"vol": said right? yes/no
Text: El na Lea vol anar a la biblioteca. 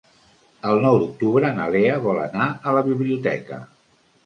yes